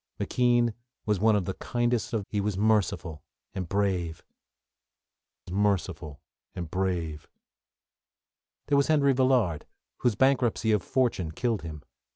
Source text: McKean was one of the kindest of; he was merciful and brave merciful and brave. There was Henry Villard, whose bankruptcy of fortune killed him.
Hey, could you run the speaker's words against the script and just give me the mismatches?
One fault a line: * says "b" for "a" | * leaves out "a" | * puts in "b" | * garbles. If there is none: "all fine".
all fine